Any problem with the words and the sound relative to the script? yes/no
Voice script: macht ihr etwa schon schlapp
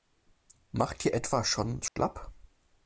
yes